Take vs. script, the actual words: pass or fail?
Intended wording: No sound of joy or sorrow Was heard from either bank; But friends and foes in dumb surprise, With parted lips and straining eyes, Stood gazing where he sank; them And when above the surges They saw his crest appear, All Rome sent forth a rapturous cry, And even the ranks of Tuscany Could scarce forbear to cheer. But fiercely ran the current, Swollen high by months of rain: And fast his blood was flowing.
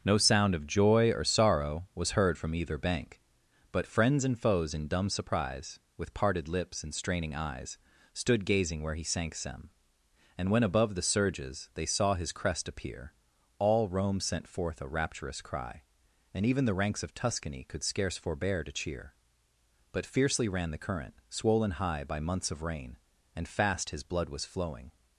pass